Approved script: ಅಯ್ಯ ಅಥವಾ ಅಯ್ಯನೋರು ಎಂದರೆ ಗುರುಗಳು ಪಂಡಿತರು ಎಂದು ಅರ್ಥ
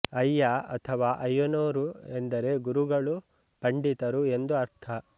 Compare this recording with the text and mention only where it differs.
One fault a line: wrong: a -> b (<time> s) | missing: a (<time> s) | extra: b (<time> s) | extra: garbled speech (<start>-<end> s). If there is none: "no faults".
no faults